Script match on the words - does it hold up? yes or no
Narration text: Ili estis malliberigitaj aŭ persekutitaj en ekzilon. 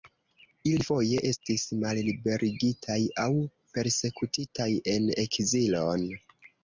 no